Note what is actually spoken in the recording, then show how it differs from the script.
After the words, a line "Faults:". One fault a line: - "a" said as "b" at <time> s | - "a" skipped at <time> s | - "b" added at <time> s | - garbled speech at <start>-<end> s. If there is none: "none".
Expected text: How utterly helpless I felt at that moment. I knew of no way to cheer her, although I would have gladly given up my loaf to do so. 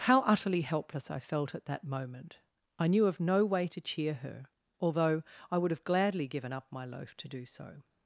How utterly helpless I felt at that moment. I knew of no way to cheer her, although I would have gladly given up my loaf to do so.
Faults:
none